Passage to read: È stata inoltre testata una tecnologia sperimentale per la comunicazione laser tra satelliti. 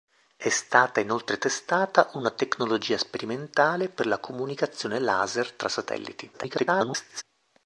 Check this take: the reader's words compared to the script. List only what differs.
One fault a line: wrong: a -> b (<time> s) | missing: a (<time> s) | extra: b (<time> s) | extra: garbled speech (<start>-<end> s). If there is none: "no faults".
extra: garbled speech (6.3-7.2 s)